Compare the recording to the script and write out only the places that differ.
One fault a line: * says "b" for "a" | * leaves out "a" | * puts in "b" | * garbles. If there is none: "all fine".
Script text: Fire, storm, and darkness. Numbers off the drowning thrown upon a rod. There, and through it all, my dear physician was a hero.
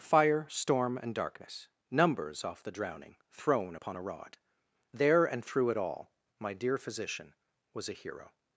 all fine